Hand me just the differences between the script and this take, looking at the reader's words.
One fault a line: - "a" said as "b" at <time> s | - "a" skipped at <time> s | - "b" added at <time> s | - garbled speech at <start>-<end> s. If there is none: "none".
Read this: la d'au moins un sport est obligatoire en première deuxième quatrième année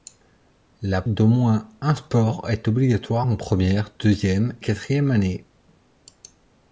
none